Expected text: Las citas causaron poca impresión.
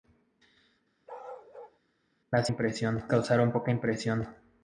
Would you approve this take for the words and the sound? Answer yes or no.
no